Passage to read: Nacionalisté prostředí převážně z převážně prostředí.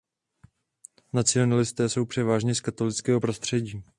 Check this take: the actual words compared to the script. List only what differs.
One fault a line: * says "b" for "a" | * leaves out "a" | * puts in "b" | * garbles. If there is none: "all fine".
* says "jsou" for "prostředí"
* says "katolického" for "převážně"